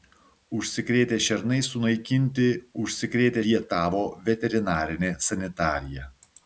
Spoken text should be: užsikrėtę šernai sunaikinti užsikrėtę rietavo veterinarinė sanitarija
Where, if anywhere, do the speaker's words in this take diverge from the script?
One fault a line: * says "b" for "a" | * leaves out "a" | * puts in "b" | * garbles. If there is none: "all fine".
all fine